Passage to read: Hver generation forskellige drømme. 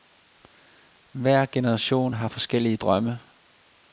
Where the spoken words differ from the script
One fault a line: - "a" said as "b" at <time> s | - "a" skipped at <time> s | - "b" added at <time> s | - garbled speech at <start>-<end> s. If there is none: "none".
- "har" added at 2.1 s